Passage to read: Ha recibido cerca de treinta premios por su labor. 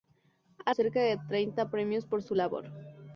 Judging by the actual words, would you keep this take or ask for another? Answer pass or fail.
fail